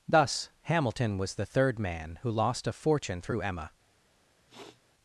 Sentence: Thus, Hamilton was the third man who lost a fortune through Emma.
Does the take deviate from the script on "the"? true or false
false